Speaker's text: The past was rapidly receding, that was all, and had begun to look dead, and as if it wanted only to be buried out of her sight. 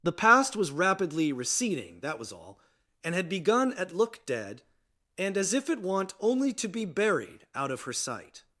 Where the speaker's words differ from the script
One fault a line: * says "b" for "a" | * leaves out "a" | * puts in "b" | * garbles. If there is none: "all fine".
* says "at" for "to"
* says "want" for "wanted"